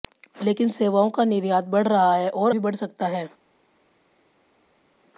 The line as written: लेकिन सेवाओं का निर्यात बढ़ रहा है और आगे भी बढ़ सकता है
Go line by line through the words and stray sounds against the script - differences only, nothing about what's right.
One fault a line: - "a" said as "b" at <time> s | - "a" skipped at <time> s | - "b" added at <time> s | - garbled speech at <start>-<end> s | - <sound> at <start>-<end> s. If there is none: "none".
- "आगे" skipped at 2.5 s